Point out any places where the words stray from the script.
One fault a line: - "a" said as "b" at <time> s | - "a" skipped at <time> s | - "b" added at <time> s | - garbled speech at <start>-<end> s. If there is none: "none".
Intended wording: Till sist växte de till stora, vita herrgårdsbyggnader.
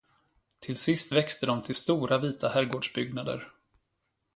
none